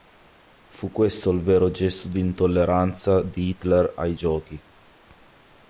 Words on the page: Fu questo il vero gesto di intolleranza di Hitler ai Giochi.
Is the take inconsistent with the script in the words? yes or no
no